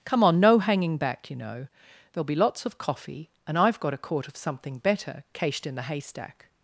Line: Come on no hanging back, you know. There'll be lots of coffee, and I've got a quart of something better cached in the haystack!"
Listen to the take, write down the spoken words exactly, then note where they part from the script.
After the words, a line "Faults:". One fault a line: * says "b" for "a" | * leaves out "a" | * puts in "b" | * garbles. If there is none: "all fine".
Come on no hanging back, you know. There'll be lots of coffee, and I've got a quart of something better cached in the haystack!"
Faults:
all fine